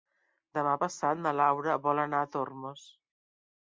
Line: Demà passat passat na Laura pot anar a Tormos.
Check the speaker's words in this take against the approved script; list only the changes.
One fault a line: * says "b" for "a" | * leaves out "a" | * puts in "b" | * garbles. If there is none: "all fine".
* leaves out "passat"
* says "vol" for "pot"